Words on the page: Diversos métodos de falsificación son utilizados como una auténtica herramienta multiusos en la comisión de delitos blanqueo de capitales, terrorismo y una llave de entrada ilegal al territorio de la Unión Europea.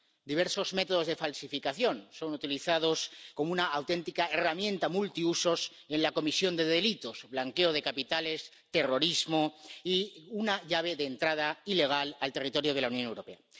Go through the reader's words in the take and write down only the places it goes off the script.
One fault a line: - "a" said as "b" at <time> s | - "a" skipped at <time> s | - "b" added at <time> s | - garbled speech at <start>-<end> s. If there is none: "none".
none